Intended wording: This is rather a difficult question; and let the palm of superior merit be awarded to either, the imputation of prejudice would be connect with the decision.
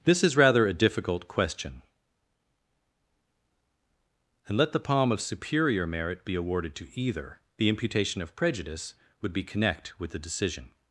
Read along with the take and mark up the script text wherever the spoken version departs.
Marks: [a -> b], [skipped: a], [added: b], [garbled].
This is rather a difficult question; and let the palm of superior merit be awarded to either, the imputation of prejudice would be connect with the decision.